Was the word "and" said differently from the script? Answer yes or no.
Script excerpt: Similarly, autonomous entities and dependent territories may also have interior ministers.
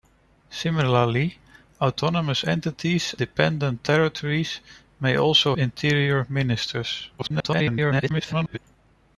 yes